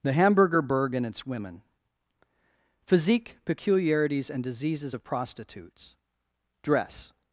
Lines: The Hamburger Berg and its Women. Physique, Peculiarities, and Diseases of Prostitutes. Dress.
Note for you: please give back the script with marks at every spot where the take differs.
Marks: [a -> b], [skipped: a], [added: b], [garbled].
The Hamburger Berg and its Women. Physique, Peculiarities, and Diseases of Prostitutes. Dress.